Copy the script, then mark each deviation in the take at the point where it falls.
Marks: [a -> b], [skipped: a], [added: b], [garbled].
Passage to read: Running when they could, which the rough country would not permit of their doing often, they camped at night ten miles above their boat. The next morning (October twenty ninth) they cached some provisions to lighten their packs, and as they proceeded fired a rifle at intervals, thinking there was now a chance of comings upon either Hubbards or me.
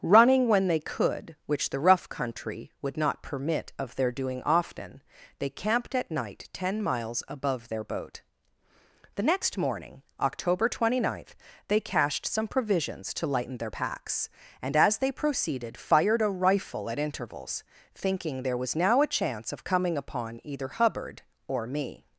Running when they could, which the rough country would not permit of their doing often, they camped at night ten miles above their boat. The next morning (October twenty ninth) they cached some provisions to lighten their packs, and as they proceeded fired a rifle at intervals, thinking there was now a chance of [comings -> coming] upon either [Hubbards -> Hubbard] or me.